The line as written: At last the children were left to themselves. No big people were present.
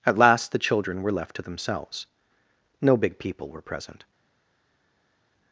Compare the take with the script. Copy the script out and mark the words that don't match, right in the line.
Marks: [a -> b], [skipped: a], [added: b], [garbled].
At last the children were left to themselves. No big people were present.